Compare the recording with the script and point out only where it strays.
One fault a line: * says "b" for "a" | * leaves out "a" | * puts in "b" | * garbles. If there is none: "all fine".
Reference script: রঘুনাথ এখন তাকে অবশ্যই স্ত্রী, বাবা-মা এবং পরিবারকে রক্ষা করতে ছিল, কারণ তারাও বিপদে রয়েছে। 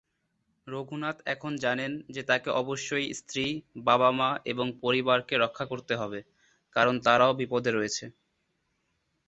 * puts in "জানেন যে"
* says "হবে" for "ছিল"